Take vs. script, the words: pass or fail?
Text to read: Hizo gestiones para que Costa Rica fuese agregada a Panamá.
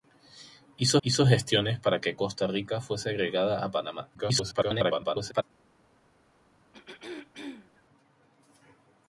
fail